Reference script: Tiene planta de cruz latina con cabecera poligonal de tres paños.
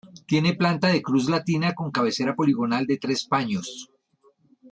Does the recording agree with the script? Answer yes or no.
yes